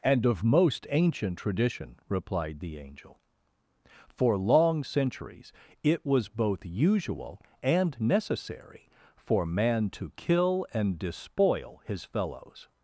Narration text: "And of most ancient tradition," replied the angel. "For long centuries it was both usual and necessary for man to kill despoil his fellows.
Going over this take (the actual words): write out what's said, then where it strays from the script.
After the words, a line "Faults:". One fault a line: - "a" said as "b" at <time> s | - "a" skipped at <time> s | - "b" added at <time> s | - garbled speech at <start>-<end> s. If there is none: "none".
"And of most ancient tradition," replied the angel. "For long centuries it was both usual and necessary for man to kill and despoil his fellows.
Faults:
- "and" added at 10.7 s